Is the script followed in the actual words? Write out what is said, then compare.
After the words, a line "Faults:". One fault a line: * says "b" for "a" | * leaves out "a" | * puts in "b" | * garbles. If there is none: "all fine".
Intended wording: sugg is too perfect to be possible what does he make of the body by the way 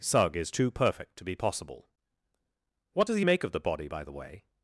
sugg is too perfect to be possible what does he make of the body by the way
Faults:
all fine